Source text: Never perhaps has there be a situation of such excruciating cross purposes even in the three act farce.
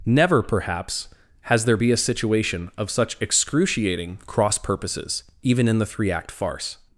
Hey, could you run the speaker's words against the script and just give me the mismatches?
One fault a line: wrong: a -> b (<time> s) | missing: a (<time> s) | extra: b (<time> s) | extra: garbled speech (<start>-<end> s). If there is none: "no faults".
no faults